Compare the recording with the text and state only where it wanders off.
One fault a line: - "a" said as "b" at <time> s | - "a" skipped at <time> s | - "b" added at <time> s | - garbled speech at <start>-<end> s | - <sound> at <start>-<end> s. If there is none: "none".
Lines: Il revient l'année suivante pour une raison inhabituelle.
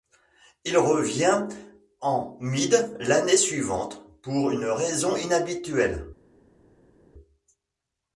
- "en Mide" added at 2.0 s